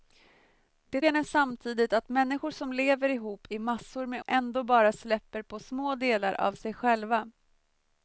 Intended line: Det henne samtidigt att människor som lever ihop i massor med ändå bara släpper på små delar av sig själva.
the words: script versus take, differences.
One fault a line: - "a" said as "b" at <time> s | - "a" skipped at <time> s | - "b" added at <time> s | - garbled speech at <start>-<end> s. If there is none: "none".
none